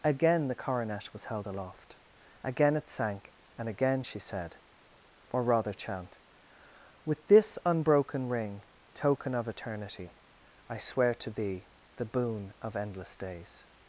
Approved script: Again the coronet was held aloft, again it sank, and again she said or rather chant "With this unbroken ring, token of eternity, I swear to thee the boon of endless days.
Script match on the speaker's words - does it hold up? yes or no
yes